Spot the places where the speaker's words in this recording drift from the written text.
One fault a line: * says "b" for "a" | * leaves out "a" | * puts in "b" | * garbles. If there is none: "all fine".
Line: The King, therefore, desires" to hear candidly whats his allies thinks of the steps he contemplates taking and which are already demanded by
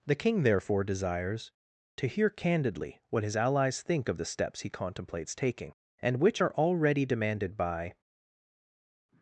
* says "what" for "whats"
* says "think" for "thinks"